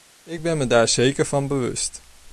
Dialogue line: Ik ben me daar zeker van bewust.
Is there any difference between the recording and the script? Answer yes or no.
no